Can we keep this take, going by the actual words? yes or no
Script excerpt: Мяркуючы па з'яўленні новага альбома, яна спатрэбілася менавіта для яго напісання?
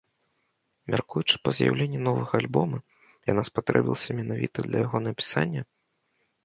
yes